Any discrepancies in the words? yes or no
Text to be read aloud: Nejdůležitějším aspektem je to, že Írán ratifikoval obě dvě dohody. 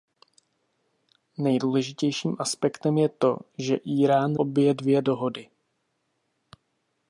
yes